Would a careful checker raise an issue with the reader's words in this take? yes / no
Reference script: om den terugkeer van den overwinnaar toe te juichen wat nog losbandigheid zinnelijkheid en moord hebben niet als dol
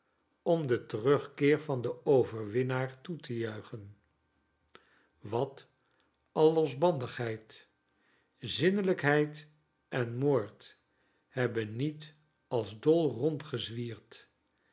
yes